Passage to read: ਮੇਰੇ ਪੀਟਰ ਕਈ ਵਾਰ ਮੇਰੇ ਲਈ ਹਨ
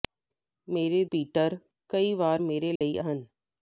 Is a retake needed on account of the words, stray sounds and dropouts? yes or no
yes